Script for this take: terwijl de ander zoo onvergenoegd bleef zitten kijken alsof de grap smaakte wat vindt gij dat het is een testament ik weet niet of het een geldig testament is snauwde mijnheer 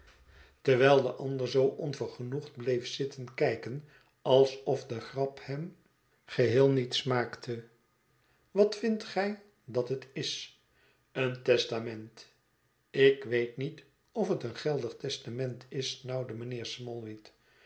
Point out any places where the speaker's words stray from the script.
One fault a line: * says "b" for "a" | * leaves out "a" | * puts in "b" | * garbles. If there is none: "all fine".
* puts in "hem geheel niet"